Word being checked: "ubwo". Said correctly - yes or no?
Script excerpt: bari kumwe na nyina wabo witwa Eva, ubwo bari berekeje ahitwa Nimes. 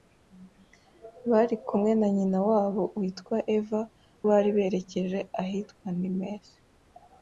no